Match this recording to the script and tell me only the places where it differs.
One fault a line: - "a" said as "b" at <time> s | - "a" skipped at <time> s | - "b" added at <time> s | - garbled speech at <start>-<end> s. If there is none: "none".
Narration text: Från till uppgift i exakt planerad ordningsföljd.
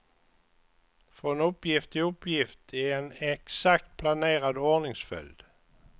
- "uppgift" added at 1.4 s
- "en" added at 2.9 s